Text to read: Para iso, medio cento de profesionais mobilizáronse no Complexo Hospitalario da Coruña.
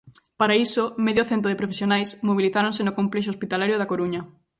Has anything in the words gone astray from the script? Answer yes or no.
no